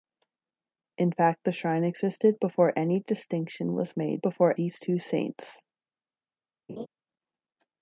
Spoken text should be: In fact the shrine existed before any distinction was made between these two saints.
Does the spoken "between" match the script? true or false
false